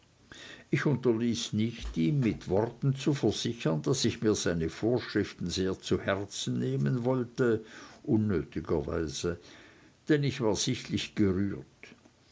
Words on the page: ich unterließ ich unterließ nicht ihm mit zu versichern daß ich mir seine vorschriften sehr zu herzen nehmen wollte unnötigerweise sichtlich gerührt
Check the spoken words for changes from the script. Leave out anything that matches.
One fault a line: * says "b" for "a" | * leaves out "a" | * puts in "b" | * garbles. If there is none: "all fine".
* leaves out "ich unterließ"
* puts in "worten"
* puts in "denn ich war"